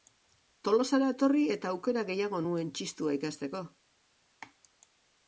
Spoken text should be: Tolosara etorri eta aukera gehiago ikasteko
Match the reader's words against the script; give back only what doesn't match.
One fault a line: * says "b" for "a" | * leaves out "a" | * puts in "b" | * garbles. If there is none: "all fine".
* puts in "nuen txistua"